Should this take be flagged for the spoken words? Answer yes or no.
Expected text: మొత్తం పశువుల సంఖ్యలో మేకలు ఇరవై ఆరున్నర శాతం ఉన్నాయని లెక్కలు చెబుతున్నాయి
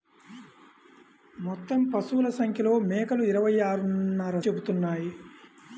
yes